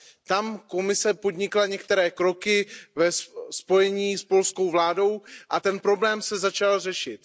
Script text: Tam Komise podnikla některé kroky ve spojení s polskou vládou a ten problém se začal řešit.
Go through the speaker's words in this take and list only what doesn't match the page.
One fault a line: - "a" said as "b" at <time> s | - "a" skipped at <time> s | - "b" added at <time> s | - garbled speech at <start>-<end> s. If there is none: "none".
none